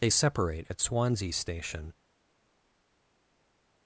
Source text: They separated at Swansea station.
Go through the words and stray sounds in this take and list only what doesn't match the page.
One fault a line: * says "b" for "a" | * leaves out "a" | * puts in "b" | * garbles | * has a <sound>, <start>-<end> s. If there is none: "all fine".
* says "separate" for "separated"